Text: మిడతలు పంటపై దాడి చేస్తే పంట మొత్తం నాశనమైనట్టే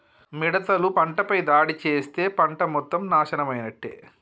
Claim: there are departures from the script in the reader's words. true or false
false